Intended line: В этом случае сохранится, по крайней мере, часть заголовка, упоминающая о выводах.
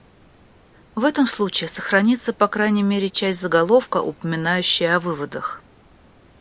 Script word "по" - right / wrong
right